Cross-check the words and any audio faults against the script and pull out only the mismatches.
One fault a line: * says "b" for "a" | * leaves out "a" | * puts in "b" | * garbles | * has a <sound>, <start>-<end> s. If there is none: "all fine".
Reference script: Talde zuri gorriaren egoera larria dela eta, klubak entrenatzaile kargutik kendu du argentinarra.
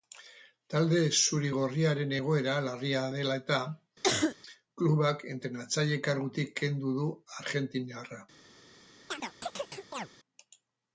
* has a cough, 4.0-4.4 s
* has a chirp, 9.1-10.1 s